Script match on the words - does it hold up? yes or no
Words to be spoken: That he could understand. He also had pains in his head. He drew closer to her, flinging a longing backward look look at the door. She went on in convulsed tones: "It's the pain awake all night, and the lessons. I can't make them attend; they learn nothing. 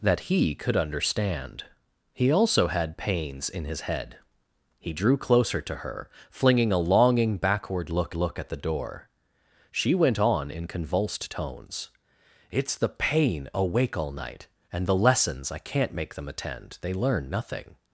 yes